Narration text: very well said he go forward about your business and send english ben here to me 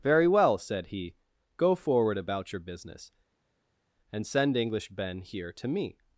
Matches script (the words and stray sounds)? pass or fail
pass